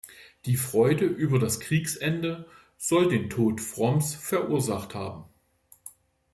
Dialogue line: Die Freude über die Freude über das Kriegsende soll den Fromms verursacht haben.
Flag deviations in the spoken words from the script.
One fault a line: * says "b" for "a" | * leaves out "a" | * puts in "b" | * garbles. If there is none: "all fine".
* leaves out "die Freude über"
* puts in "Tod"